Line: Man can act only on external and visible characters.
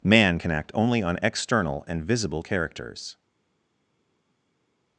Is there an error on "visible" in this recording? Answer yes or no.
no